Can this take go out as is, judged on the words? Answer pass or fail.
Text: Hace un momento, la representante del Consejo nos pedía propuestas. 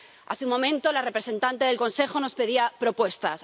pass